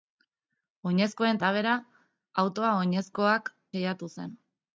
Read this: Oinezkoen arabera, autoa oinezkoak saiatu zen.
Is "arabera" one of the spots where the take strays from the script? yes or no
no